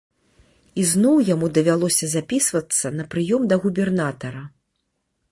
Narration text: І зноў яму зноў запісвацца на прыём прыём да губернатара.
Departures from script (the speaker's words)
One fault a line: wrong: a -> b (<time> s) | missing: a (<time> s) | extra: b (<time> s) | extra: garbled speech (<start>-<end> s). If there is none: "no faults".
wrong: зноў -> давялося (1.6 s)
missing: прыём (3.4 s)